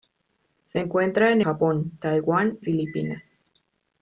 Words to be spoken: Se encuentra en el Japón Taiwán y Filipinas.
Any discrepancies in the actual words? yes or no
yes